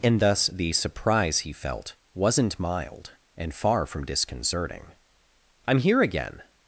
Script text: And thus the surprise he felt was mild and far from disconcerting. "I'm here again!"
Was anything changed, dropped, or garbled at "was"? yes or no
yes